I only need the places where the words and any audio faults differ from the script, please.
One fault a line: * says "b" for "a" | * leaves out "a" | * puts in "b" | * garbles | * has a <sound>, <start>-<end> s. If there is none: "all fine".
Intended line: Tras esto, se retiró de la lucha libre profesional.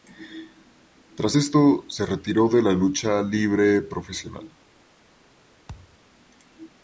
* has a thud, 5.7-6.0 s